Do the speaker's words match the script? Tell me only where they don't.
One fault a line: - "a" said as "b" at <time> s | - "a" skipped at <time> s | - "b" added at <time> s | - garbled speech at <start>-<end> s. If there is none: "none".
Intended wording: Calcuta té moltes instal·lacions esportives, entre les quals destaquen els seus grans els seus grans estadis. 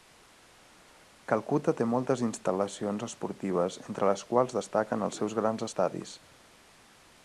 - "els seus grans" skipped at 5.7 s